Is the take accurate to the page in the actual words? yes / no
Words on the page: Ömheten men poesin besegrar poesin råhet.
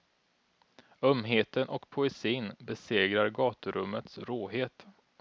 no